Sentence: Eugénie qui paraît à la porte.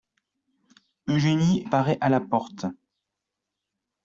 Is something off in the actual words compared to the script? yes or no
yes